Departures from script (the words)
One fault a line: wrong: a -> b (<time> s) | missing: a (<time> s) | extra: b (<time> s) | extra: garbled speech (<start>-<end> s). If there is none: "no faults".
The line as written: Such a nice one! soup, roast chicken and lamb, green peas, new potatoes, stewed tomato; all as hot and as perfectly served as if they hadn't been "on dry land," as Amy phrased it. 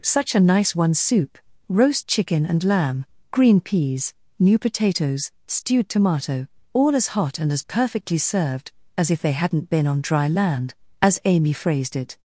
no faults